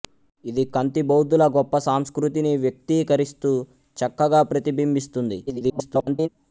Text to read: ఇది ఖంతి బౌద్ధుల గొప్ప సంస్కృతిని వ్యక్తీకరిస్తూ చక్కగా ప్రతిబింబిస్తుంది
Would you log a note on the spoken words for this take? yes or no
yes